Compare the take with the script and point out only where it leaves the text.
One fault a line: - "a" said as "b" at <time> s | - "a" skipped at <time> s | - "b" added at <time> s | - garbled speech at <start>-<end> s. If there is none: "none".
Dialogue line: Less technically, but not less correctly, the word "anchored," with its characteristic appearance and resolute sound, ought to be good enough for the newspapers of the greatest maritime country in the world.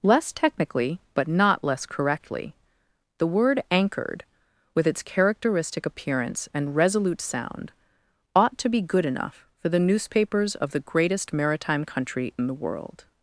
none